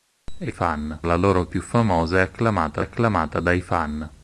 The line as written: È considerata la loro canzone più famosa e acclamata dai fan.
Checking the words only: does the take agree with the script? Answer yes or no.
no